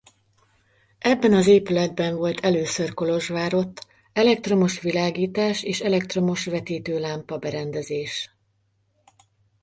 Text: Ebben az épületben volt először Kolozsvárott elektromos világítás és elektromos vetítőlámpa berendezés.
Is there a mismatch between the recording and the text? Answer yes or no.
no